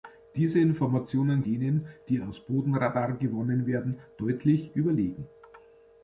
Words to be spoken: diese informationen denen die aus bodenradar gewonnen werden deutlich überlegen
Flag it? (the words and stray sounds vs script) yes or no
no